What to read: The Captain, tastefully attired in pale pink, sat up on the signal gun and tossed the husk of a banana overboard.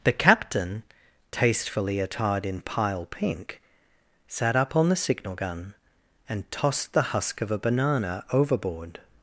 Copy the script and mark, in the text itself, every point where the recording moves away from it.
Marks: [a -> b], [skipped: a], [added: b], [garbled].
The Captain, tastefully attired in [pale -> pile] pink, sat up on the signal gun and tossed the husk of a banana overboard.